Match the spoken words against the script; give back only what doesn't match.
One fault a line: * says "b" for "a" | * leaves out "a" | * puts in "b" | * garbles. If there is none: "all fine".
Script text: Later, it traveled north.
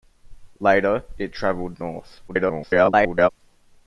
* garbles